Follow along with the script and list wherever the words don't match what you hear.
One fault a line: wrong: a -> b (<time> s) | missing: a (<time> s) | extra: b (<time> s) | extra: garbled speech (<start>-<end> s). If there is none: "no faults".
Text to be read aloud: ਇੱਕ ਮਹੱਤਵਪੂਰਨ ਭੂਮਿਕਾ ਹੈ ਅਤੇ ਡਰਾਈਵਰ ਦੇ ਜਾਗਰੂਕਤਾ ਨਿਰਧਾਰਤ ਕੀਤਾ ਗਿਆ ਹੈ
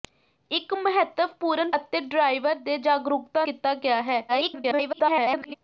missing: ਭੂਮਿਕਾ ਹੈ (1.7 s)
missing: ਨਿਰਧਾਰਤ (3.4 s)
extra: garbled speech (4.3-5.5 s)